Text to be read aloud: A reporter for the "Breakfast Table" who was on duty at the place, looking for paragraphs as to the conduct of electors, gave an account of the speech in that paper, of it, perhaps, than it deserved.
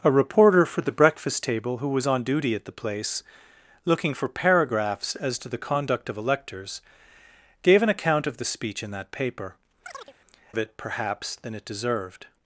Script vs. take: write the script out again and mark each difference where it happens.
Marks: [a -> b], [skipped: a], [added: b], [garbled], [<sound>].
A reporter for the "Breakfast Table" who was on duty at the place, looking for paragraphs as to the conduct of electors, gave an account of the speech in that paper, [chirp] of it, perhaps, than it deserved.